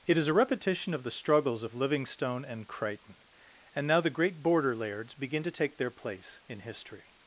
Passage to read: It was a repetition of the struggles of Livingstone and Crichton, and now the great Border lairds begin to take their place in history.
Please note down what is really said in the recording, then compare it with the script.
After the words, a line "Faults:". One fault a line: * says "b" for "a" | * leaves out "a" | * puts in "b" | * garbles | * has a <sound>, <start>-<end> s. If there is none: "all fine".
It is a repetition of the struggles of Livingstone and Crichton, and now the great Border lairds begin to take their place in history.
Faults:
* says "is" for "was"